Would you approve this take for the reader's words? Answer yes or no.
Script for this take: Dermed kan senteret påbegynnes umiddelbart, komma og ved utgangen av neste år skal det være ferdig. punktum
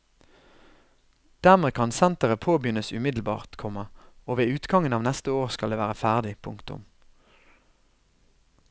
yes